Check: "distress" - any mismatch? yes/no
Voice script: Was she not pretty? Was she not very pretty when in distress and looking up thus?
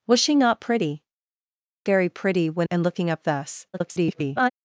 yes